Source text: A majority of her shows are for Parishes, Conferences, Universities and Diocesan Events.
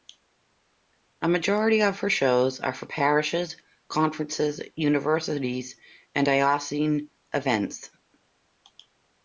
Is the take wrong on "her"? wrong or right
right